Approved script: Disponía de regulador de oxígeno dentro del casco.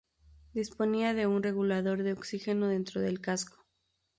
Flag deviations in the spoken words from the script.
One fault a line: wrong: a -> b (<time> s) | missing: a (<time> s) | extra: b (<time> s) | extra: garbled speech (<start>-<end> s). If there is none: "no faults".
extra: un (1.3 s)